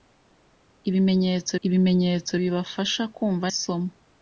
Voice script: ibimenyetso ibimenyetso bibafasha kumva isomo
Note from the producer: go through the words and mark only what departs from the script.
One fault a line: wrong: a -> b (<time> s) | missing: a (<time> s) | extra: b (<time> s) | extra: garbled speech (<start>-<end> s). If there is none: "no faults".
no faults